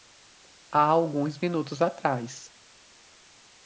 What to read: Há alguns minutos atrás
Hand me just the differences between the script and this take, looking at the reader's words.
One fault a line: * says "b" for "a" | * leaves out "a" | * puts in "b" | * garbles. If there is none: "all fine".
all fine